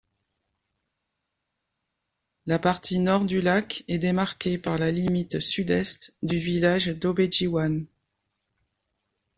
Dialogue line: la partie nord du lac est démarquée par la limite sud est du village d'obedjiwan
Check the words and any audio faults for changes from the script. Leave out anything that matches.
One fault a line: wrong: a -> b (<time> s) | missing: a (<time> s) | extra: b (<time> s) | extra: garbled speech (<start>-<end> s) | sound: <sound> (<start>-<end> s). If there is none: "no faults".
no faults